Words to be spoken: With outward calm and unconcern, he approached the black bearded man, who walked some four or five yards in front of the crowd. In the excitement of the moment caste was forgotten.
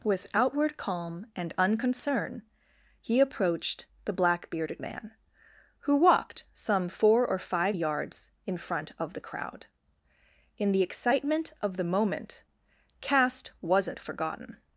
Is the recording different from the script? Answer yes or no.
yes